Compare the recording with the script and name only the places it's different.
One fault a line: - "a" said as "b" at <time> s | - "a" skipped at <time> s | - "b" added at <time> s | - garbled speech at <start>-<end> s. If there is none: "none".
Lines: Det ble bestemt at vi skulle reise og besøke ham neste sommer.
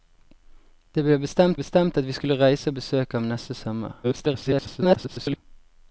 - "bestemt" added at 1.6 s
- garbled speech at 4.0-5.4 s